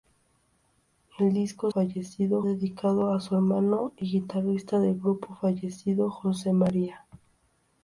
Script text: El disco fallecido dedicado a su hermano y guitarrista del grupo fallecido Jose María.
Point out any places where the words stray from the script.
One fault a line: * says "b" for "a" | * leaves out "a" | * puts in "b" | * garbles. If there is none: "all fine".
all fine